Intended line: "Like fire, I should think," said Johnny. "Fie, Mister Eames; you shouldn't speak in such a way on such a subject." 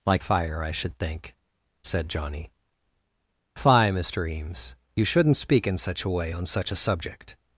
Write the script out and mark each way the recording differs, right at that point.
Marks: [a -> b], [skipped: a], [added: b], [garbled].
"Like fire, I should think," said Johnny. "Fie, Mister Eames; you shouldn't speak in such a way on such a subject."